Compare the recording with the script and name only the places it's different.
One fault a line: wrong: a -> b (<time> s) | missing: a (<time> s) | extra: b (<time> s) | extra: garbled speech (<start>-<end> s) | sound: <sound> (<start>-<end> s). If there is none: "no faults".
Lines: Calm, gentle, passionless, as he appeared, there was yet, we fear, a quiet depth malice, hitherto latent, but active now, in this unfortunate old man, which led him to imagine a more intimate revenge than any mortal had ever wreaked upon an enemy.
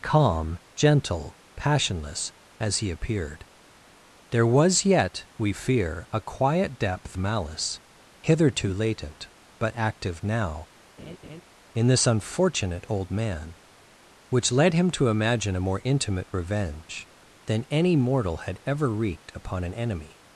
sound: laugh (11.0-11.4 s)